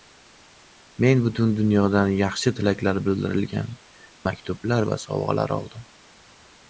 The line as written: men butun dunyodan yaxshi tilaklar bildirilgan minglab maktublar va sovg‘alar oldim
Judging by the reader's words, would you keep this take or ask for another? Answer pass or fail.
fail